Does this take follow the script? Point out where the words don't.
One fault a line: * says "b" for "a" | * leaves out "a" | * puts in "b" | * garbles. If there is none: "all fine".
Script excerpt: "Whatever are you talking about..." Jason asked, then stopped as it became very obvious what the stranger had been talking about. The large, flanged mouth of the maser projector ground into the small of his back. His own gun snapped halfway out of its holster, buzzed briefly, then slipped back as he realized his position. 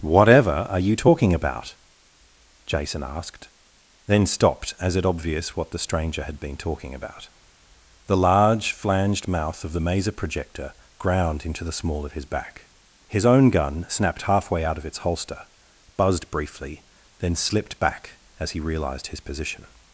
* leaves out "became very"